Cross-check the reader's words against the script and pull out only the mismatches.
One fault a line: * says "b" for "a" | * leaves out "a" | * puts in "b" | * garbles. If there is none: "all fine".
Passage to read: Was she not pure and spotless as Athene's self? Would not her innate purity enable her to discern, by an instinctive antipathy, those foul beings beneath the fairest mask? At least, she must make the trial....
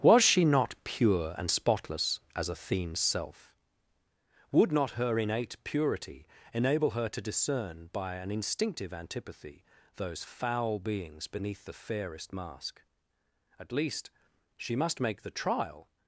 all fine